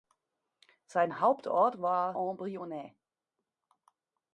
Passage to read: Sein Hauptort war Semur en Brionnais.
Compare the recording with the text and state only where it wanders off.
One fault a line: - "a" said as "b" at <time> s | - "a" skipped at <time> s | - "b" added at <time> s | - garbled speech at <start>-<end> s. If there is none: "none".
- "Semur" skipped at 2.1 s